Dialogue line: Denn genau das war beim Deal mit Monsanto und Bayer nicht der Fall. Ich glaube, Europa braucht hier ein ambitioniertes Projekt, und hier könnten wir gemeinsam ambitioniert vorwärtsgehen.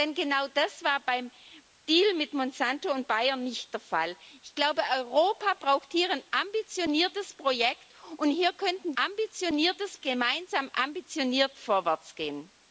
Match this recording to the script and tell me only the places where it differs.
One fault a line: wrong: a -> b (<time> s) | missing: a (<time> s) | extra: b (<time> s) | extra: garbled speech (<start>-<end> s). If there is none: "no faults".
wrong: wir -> ambitioniertes (9.0 s)